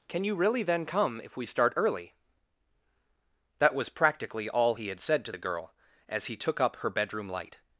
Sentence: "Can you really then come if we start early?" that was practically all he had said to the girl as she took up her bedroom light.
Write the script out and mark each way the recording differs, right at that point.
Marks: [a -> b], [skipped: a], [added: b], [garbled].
"Can you really then come if we start early?" that was practically all he had said to the girl as [she -> he] took up her bedroom light.